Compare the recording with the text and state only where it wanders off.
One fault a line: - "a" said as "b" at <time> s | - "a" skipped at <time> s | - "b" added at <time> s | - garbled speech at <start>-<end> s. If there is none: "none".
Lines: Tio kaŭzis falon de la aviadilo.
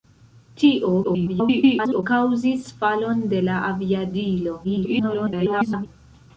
- garbled speech at 1.0-2.0 s
- garbled speech at 4.6-5.9 s